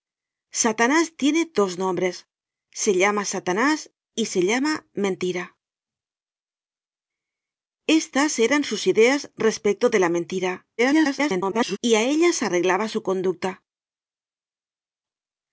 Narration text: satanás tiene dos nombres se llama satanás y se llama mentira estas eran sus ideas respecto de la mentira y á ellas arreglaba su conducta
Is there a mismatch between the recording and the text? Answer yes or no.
yes